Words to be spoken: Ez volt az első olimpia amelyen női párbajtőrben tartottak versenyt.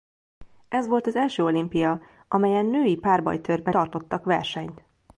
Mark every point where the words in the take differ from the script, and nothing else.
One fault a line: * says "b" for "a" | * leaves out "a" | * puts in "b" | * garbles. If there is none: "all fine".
all fine